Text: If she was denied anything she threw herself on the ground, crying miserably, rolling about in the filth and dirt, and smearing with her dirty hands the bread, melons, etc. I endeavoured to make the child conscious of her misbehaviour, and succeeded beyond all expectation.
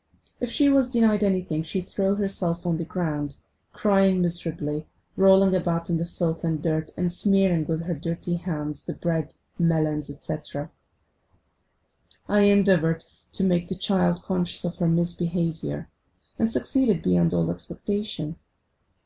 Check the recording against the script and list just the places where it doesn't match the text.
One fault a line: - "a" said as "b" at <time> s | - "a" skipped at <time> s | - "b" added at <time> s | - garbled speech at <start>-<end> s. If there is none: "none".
none